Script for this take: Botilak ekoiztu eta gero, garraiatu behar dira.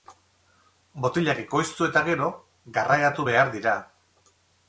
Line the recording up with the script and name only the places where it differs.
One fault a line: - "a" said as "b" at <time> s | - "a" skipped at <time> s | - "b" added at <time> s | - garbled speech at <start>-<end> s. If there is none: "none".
none